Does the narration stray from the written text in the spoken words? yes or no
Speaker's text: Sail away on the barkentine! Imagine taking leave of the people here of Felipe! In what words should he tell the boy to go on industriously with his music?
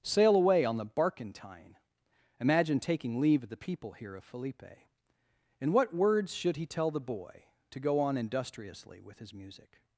no